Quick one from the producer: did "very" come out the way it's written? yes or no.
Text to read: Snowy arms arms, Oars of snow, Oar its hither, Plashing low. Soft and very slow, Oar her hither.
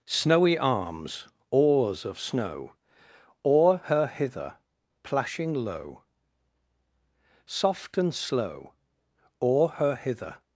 no